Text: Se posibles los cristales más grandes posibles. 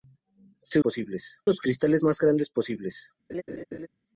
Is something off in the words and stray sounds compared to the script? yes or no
yes